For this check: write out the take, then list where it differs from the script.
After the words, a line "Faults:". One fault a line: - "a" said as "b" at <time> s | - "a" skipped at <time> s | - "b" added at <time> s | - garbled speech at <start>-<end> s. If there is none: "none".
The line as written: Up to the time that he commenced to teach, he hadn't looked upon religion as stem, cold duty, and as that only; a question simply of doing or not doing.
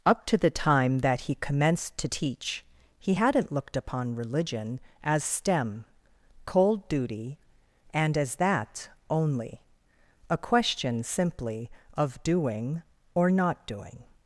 Up to the time that he commenced to teach, he hadn't looked upon religion as stem, cold duty, and as that only; a question simply of doing or not doing.
Faults:
none